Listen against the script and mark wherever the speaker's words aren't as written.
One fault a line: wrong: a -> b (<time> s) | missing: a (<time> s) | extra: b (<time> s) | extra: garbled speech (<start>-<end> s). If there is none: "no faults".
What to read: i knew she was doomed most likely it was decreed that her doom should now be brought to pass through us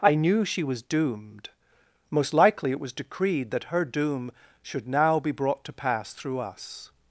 no faults